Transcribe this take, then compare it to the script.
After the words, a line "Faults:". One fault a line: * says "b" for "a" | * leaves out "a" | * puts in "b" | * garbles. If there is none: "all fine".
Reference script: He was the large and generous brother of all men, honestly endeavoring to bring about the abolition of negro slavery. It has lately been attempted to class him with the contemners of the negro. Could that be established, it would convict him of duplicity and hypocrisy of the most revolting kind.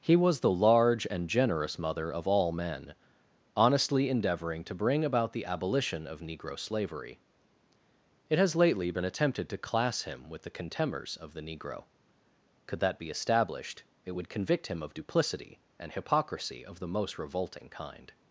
He was the large and generous mother of all men, honestly endeavoring to bring about the abolition of negro slavery. It has lately been attempted to class him with the contemners of the negro. Could that be established, it would convict him of duplicity and hypocrisy of the most revolting kind.
Faults:
* says "mother" for "brother"